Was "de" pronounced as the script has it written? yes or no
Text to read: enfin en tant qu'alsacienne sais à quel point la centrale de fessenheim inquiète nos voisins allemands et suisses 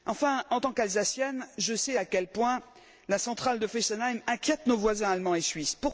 yes